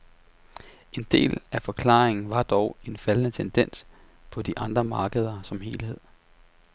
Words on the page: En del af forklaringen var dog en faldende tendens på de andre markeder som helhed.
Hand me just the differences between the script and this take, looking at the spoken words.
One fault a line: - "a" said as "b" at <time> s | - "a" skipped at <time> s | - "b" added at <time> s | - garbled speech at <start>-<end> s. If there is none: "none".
none